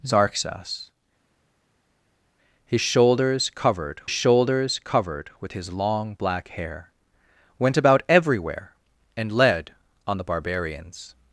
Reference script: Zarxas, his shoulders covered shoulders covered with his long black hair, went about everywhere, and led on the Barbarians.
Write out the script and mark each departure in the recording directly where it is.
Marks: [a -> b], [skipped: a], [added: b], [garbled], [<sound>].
Zarxas, his shoulders covered shoulders covered with his long black hair, went about everywhere, and led on the Barbarians.